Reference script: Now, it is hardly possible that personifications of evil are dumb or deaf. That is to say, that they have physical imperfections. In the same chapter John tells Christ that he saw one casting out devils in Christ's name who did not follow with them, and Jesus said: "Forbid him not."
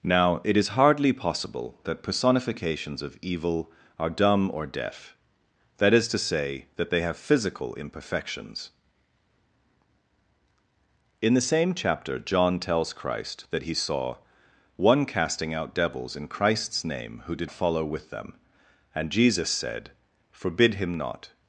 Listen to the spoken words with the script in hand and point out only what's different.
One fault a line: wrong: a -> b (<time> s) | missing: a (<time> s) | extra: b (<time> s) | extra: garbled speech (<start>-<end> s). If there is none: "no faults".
missing: not (17.5 s)